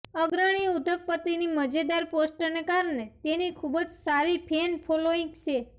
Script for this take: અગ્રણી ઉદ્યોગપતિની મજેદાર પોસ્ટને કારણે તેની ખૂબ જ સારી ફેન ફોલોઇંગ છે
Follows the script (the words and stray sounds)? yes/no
yes